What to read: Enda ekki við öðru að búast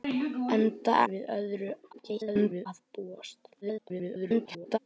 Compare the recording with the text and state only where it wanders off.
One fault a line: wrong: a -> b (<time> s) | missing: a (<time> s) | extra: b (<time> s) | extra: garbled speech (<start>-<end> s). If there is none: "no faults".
missing: ekki (0.9 s)
extra: garbled speech (1.9-2.7 s)
extra: garbled speech (3.6-4.8 s)